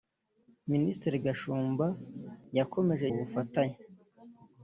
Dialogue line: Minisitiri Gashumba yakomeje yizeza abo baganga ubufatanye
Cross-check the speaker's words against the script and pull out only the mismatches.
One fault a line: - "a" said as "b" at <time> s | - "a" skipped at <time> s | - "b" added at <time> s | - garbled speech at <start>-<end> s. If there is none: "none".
- "yizeza abo baganga" skipped at 3.1 s